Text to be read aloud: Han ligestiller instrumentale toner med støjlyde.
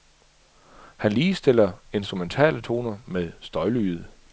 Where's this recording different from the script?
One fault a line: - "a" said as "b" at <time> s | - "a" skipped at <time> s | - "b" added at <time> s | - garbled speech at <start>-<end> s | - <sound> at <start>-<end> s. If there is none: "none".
none